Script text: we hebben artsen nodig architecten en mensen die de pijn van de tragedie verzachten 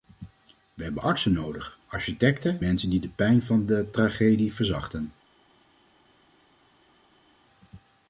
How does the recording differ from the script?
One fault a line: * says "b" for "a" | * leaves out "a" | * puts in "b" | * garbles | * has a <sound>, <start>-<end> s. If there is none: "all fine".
* leaves out "en"